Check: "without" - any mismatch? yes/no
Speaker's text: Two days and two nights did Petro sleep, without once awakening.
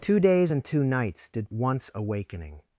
yes